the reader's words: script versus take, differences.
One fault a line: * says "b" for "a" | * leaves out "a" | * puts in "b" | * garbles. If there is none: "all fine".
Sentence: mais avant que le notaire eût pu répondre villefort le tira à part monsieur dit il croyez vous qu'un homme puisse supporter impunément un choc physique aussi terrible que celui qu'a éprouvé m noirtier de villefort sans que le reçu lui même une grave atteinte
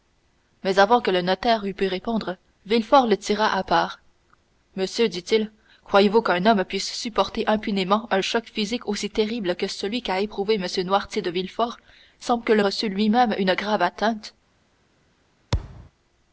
all fine